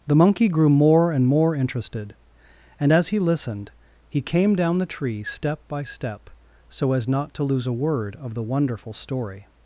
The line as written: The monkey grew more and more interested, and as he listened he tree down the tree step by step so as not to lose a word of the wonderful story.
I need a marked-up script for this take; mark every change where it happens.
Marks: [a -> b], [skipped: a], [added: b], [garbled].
The monkey grew more and more interested, and as he listened he [tree -> came] down the tree step by step so as not to lose a word of the wonderful story.